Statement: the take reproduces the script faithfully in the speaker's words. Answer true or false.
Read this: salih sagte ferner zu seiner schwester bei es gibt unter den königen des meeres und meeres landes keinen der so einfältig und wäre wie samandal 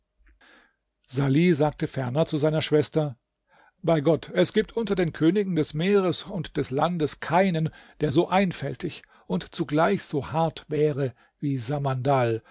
false